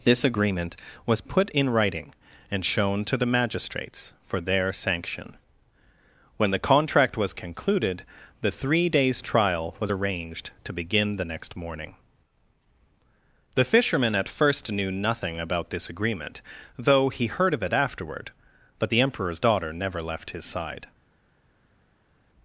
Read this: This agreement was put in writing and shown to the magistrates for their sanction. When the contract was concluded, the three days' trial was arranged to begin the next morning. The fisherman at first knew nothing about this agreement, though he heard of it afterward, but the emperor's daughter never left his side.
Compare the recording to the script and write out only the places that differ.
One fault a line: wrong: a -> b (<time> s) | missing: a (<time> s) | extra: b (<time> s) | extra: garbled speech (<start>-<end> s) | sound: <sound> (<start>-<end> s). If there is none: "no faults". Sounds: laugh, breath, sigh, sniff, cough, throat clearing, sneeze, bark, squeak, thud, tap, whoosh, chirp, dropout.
no faults